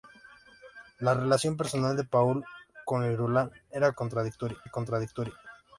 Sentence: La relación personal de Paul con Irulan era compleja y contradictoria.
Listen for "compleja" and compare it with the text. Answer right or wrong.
wrong